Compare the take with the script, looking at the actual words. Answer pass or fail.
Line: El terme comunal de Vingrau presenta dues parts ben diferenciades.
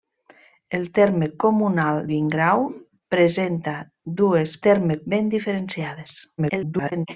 fail